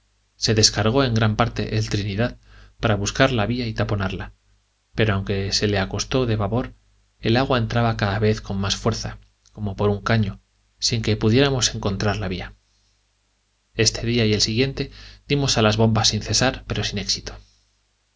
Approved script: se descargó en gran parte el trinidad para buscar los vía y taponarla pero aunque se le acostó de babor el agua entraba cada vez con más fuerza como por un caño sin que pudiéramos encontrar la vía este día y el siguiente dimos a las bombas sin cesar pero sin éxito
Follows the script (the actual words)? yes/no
no